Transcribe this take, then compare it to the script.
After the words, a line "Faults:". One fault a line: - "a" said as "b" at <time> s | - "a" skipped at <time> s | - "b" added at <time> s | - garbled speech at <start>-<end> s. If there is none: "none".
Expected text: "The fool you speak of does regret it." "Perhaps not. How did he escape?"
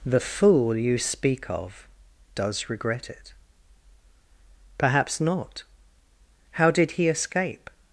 "The fool you speak of does regret it." "Perhaps not. How did he escape?"
Faults:
none